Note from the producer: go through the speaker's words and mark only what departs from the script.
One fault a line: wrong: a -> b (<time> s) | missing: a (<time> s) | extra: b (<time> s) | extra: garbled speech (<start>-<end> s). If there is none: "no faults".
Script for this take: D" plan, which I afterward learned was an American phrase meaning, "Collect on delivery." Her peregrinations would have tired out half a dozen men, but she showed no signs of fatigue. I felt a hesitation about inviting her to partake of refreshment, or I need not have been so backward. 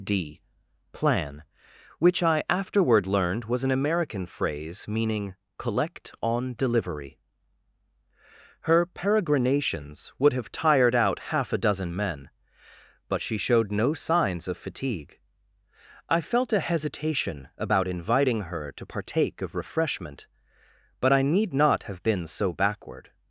wrong: or -> but (21.0 s)